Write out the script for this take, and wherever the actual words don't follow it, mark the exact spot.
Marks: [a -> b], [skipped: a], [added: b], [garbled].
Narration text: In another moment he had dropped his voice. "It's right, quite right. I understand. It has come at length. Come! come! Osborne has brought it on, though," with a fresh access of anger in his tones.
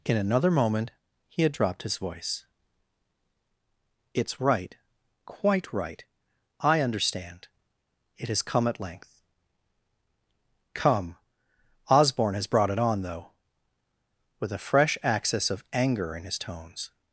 In another moment he had dropped his voice. "It's right, quite right. I understand. It has come at length. Come! [skipped: come!] Osborne has brought it on, though," with a fresh access of anger in his tones.